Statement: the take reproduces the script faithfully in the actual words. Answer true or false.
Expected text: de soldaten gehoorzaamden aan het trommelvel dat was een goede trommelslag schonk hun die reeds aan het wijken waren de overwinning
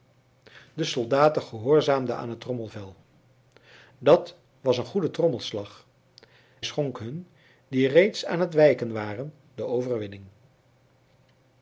true